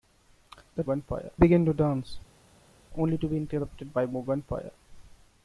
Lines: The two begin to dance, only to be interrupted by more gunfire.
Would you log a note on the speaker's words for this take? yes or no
yes